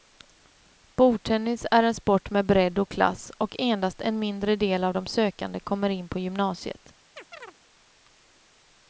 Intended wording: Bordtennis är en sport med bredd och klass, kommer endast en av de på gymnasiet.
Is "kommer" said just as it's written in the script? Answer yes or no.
no